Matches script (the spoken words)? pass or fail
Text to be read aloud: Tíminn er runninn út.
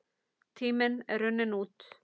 pass